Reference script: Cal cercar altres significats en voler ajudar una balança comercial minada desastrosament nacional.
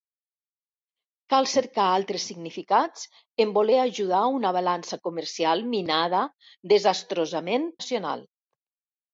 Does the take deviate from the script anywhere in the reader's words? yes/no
no